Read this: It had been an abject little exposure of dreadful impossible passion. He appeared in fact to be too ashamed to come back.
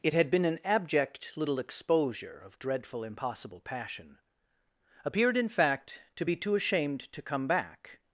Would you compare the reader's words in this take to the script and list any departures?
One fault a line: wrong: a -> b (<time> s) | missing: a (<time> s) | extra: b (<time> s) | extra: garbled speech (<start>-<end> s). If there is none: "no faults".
missing: He (4.2 s)